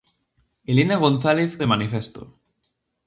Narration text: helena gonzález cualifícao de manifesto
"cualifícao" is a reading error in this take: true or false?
true